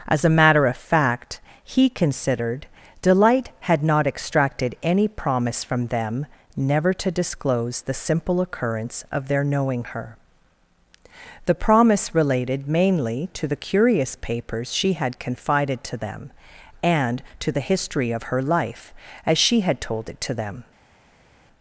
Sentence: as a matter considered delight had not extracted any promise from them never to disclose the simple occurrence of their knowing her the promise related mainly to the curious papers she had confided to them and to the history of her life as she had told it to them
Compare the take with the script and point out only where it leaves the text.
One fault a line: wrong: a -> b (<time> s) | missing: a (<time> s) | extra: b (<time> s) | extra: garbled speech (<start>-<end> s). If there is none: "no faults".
extra: of fact he (0.7 s)